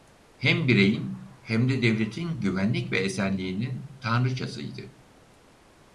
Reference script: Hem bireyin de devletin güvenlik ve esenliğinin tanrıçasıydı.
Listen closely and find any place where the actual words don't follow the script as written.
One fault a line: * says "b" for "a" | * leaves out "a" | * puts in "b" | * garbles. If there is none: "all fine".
* puts in "hem"